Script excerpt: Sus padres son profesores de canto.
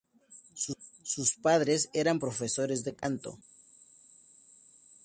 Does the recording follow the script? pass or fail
fail